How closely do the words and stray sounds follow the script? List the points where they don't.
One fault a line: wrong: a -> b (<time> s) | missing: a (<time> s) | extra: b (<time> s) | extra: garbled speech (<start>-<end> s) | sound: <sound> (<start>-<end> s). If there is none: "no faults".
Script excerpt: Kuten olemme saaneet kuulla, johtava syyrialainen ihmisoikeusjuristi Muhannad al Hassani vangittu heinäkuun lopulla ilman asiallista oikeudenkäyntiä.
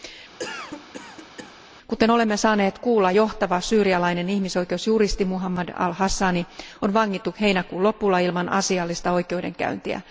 sound: cough (0.4-1.5 s)
extra: on (6.8 s)